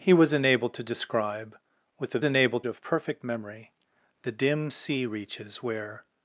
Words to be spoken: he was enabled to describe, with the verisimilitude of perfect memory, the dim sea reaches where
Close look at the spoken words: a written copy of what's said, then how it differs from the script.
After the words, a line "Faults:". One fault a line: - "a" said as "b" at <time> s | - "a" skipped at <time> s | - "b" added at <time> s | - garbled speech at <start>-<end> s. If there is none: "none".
he was enabled to describe, with the enabled of perfect memory, the dim sea reaches where
Faults:
- "verisimilitude" said as "enabled" at 2.2 s